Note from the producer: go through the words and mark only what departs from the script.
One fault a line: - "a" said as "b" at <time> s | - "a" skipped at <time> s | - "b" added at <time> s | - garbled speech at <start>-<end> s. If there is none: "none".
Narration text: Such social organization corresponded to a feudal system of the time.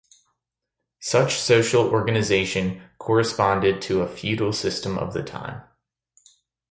none